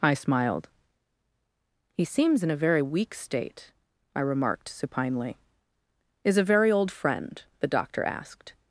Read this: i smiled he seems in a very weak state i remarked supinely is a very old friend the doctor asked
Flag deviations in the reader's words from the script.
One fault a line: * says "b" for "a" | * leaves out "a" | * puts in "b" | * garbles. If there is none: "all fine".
all fine